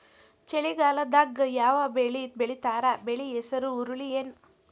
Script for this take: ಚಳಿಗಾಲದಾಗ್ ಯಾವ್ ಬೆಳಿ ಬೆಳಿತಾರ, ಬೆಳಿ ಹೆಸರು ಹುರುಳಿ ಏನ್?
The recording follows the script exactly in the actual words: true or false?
true